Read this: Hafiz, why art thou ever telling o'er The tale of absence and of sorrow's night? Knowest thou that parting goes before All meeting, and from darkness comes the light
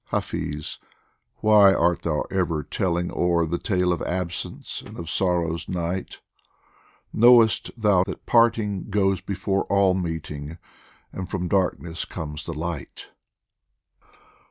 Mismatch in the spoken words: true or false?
false